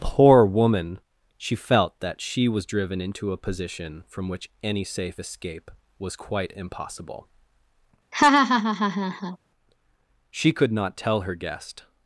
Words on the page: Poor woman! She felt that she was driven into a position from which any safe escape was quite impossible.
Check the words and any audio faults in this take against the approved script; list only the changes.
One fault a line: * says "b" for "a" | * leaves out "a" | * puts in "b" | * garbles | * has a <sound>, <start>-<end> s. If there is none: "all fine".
* has a laugh, 8.1-9.4 s
* puts in "She could not tell her guest"